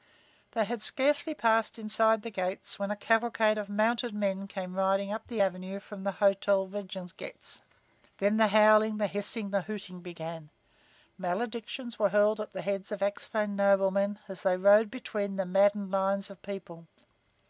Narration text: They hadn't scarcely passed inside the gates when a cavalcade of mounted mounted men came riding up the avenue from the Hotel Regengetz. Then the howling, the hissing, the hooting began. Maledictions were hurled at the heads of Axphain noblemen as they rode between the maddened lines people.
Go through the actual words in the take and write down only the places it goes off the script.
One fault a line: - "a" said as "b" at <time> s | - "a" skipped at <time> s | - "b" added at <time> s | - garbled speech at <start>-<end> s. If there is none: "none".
- "hadn't" said as "had" at 0.7 s
- "mounted" skipped at 4.1 s
- "of" added at 16.3 s